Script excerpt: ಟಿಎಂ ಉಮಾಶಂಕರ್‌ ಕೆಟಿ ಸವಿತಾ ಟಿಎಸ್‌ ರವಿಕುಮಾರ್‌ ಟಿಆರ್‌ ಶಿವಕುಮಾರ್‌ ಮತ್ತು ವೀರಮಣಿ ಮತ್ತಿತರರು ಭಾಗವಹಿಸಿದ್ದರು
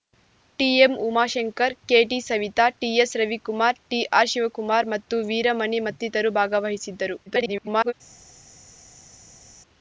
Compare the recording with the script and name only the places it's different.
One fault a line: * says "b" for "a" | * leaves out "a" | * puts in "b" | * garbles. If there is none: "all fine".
* garbles